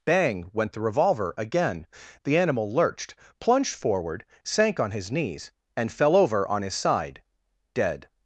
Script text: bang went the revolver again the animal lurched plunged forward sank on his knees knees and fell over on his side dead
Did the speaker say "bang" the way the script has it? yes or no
yes